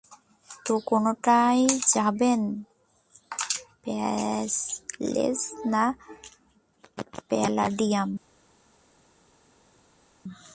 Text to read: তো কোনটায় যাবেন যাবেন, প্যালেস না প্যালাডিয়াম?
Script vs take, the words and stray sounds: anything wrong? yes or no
yes